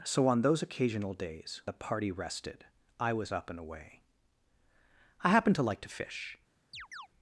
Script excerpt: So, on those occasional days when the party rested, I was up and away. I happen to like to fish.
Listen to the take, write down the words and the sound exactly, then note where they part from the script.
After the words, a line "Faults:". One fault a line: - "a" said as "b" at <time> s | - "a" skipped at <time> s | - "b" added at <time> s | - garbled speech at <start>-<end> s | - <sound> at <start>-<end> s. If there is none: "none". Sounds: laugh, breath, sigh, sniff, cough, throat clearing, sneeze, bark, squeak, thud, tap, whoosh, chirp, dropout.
So, on those occasional days the party rested, I was up and away. I happen to like to fish.
Faults:
- "when" skipped at 1.6 s
- chirp at 6.7-7.1 s